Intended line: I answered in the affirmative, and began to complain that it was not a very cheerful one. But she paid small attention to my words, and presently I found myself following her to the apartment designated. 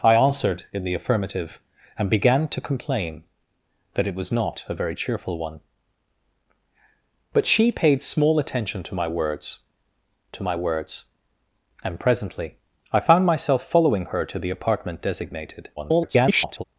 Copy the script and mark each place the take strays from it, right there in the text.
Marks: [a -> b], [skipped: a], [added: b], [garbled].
I answered in the affirmative, and began to complain that it was not a very cheerful one. But she paid small attention to my words, [added: to my words] and presently I found myself following her to the apartment designated. [garbled]